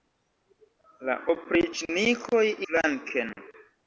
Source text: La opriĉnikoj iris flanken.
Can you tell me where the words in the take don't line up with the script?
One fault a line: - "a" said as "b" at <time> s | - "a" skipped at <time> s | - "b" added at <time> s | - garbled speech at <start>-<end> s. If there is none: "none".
- "iris" skipped at 2.4 s